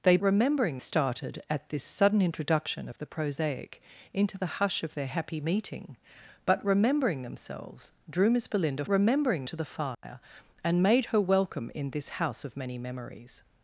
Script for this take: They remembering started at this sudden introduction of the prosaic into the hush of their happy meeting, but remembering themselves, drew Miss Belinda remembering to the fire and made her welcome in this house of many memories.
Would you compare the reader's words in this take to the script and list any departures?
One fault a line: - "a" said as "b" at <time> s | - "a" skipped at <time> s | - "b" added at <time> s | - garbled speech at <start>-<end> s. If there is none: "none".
none